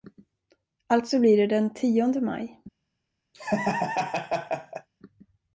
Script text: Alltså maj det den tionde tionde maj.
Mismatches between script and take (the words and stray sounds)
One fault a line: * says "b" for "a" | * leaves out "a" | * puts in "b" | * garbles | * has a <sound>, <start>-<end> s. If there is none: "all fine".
* says "blir" for "maj"
* leaves out "tionde"
* has a laugh, 3.3-4.9 s